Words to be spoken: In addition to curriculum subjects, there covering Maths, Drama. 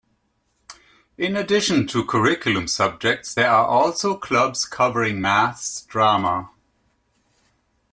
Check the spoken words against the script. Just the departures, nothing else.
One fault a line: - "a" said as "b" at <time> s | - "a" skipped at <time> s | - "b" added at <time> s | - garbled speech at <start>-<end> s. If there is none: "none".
- "are also clubs" added at 3.5 s